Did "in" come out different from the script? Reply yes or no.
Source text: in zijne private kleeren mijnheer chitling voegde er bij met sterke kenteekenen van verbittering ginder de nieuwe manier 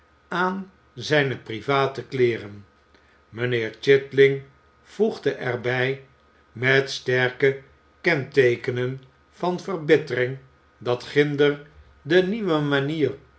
yes